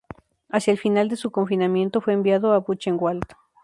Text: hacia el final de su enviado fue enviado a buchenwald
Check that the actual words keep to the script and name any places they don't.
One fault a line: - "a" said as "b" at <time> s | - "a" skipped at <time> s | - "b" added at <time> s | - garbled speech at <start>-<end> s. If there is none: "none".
- "enviado" said as "confinamiento" at 1.3 s